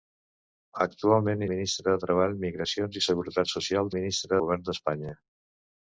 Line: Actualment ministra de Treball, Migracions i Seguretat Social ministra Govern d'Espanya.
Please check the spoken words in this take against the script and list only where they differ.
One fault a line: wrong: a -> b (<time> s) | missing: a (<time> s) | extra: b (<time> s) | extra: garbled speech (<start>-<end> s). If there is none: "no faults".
no faults